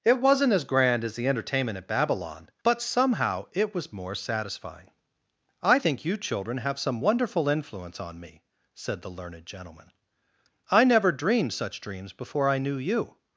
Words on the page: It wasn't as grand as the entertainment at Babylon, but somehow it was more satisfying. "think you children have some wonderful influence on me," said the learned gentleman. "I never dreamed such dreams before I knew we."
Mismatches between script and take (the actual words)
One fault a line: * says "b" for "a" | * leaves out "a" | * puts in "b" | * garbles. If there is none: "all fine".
* puts in "I"
* says "you" for "we"